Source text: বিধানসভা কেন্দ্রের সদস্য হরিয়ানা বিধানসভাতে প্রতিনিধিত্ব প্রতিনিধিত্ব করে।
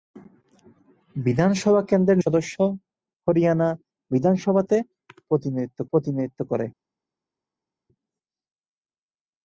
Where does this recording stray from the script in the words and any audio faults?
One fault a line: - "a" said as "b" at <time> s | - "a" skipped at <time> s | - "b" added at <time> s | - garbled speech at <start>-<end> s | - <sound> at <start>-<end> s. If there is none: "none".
none